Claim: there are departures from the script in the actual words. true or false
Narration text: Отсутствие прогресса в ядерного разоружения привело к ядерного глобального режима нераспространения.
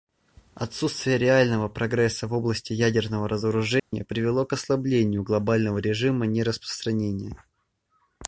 true